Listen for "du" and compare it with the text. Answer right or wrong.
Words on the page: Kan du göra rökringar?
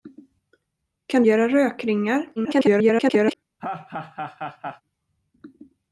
wrong